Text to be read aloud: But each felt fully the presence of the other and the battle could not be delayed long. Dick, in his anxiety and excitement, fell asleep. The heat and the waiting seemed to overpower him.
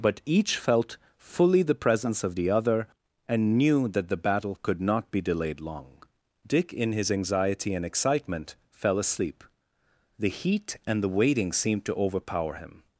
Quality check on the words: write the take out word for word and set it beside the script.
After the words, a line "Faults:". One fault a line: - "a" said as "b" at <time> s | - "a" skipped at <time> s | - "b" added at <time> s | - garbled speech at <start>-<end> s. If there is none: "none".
But each felt fully the presence of the other and knew that the battle could not be delayed long. Dick, in his anxiety and excitement, fell asleep. The heat and the waiting seemed to overpower him.
Faults:
- "knew that" added at 3.6 s